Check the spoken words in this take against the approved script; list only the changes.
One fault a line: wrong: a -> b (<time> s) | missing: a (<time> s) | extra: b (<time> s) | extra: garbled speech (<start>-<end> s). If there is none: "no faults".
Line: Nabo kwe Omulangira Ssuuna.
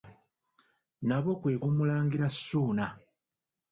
no faults